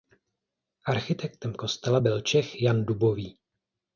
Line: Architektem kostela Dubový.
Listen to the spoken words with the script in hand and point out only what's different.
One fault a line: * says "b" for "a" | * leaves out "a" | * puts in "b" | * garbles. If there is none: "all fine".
* puts in "byl Čech Jan"